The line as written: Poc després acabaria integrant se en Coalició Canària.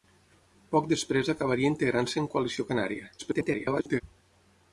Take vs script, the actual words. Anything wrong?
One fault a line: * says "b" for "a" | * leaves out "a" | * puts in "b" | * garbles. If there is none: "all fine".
* garbles